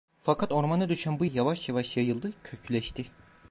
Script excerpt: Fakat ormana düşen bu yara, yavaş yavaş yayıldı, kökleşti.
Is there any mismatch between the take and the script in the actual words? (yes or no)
yes